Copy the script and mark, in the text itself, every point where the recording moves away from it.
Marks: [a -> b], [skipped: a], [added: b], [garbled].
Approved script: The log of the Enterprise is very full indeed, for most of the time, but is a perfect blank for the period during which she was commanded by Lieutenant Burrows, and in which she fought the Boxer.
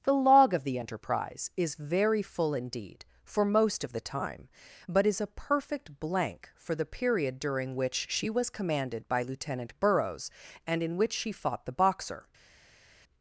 The log of the Enterprise is very full indeed, for most of the time, but is a perfect blank for the period during which she was commanded by Lieutenant Burrows, and in which she fought the Boxer.